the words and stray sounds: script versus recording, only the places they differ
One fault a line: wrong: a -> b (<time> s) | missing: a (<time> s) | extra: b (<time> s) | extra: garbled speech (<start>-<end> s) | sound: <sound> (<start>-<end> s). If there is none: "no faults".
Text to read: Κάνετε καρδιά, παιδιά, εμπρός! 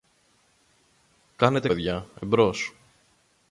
missing: καρδιά (1.7 s)